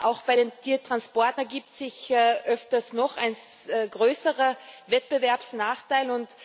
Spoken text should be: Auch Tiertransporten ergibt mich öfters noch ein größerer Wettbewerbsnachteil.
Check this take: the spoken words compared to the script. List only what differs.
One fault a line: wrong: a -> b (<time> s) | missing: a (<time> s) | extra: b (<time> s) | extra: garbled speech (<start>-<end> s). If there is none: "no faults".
extra: bei den (0.2 s)
wrong: mich -> sich (1.7 s)